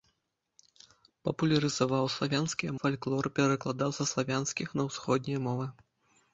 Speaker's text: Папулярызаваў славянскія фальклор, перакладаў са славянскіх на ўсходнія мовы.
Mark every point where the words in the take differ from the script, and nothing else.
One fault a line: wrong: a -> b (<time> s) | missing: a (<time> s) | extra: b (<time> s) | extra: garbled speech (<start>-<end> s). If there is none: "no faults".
no faults